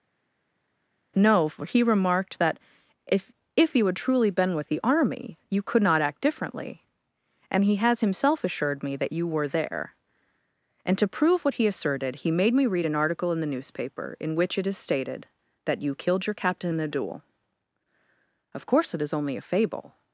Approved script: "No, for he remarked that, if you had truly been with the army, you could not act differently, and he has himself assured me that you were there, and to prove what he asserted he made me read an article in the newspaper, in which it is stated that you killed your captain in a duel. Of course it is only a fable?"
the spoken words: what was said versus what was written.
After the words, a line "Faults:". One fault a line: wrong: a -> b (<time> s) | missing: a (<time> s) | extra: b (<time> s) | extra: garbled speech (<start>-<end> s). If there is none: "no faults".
"No, for he remarked that, if if you had truly been with the army, you could not act differently, and he has himself assured me that you were there, and to prove what he asserted he made me read an article in the newspaper, in which it is stated that you killed your captain in a duel. Of course it is only a fable?"
Faults:
extra: if (3.5 s)